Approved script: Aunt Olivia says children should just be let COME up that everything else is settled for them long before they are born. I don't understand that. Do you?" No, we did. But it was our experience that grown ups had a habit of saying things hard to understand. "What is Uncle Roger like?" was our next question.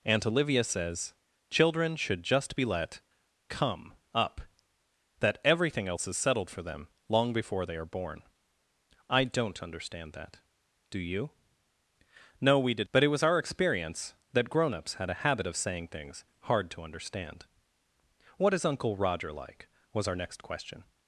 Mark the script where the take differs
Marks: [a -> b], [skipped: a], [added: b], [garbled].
Aunt Olivia says children should just be let COME up that everything else is settled for them long before they are born. I don't understand that. Do you?" No, we did. But it was our experience that grown ups had a habit of saying things hard to understand. "What is Uncle Roger like?" was our next question.